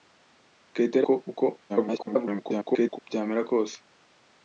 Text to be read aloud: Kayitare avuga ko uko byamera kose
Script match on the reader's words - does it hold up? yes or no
no